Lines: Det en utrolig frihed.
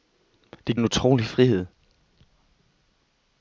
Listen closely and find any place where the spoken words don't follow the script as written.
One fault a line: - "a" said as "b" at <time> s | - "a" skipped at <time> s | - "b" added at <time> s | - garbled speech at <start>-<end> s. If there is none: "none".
none